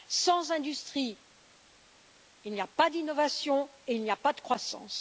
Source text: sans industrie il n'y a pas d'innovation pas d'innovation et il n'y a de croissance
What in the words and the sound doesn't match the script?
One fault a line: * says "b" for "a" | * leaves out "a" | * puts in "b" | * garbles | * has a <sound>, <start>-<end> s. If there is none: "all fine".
* leaves out "pas d'innovation"
* puts in "pas"